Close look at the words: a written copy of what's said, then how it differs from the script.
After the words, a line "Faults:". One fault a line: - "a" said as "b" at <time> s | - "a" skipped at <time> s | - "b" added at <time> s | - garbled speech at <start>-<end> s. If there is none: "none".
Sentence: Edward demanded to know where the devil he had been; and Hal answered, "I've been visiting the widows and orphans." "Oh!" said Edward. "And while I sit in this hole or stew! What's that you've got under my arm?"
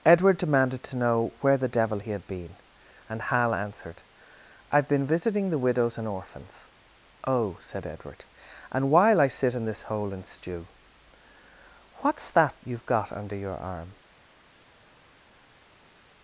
Edward demanded to know where the devil he had been; and Hal answered, "I've been visiting the widows and orphans." "Oh!" said Edward. "And while I sit in this hole and stew! What's that you've got under your arm?"
Faults:
- "or" said as "and" at 10.1 s
- "my" said as "your" at 13.4 s